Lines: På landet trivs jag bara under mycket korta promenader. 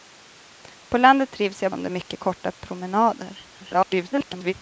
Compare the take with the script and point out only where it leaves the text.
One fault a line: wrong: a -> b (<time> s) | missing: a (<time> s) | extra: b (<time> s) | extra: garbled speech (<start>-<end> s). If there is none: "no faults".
missing: bara (1.7 s)
extra: garbled speech (3.6-4.5 s)